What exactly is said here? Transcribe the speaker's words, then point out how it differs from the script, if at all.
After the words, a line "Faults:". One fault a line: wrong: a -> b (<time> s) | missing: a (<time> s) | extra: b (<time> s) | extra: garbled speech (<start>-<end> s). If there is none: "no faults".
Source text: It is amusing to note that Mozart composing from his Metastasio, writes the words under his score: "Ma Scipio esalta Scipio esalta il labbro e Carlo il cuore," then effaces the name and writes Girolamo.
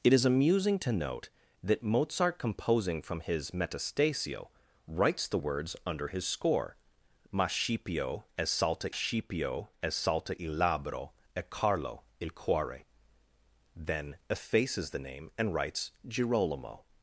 It is amusing to note that Mozart composing from his Metastasio, writes the words under his score: "Ma Scipio esalta Scipio esalta il labbro e Carlo il cuore," then effaces the name and writes Girolamo.
Faults:
no faults